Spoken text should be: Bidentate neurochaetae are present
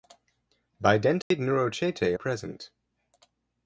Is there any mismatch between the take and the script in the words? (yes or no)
yes